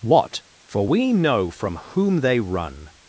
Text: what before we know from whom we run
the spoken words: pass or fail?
fail